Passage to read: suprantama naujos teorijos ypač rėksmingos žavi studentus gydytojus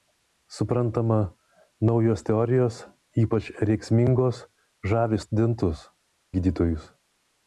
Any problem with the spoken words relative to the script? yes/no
no